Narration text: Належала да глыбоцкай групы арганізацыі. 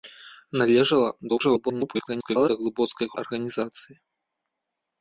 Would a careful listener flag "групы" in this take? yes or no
yes